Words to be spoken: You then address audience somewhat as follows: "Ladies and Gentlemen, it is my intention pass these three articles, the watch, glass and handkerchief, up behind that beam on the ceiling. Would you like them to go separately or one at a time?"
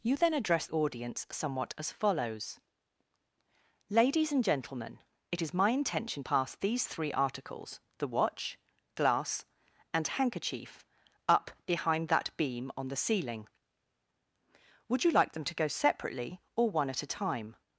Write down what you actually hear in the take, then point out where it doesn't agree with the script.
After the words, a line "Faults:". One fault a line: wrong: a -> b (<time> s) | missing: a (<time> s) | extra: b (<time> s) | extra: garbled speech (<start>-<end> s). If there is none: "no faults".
You then address audience somewhat as follows: "Ladies and Gentlemen, it is my intention pass these three articles, the watch, glass and handkerchief, up behind that beam on the ceiling. Would you like them to go separately or one at a time?"
Faults:
no faults